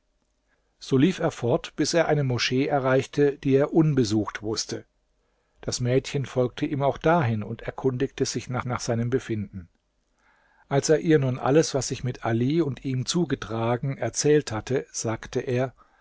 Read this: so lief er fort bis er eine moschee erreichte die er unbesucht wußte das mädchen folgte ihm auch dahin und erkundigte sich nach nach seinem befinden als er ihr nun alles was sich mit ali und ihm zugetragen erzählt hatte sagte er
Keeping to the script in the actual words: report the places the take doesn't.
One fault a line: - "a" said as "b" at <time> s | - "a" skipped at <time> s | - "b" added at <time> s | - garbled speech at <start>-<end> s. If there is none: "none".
none